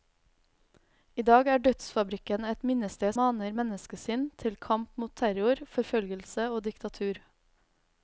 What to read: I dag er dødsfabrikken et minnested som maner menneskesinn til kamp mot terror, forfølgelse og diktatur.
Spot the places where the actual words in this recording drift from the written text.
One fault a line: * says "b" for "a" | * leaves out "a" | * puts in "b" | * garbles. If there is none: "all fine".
* leaves out "som"